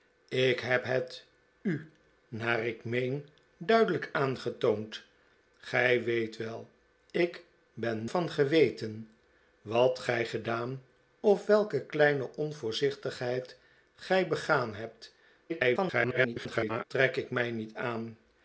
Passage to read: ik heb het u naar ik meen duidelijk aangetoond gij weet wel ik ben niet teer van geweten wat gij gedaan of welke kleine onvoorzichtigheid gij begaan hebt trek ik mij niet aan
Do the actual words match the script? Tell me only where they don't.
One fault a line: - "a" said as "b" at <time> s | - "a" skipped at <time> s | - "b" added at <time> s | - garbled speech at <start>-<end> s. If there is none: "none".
- "niet teer" skipped at 8.1 s
- garbled speech at 15.5-16.8 s